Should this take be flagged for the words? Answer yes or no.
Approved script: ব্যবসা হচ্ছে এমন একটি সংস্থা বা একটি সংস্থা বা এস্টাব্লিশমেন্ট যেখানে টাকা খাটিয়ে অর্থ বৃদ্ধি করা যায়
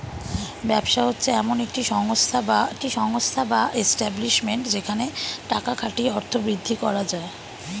no